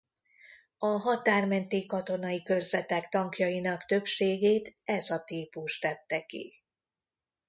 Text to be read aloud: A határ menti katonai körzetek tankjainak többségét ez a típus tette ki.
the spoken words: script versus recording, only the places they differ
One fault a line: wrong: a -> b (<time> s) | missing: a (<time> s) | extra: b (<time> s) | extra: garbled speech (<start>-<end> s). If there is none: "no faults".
no faults